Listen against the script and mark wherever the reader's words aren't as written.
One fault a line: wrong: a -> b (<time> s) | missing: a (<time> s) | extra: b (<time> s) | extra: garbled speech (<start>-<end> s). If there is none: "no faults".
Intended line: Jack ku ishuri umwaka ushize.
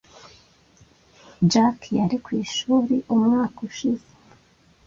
extra: yari (2.0 s)